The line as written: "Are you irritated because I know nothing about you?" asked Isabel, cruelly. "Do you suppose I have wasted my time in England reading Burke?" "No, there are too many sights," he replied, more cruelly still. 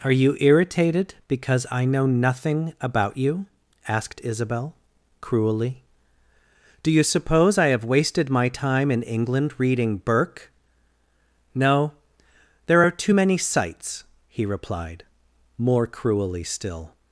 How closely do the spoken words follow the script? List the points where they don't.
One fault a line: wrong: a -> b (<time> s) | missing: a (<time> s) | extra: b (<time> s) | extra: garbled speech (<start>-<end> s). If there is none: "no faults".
no faults